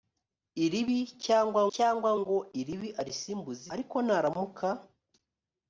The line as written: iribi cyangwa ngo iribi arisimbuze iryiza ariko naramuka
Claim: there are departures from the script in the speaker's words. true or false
true